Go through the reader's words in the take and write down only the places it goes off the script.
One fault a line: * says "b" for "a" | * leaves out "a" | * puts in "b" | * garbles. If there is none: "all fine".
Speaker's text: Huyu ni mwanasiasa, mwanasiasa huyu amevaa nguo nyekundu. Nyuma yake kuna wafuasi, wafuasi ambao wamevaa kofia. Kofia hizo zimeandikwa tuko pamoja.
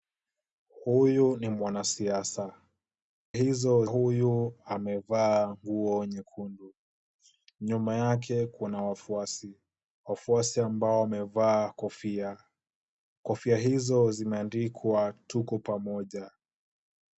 * says "hizo" for "mwanasiasa"